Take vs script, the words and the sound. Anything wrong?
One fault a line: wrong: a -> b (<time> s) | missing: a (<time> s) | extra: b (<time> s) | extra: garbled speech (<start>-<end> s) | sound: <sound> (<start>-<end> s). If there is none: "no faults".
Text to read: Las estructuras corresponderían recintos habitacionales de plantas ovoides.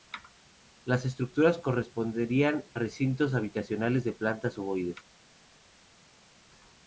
no faults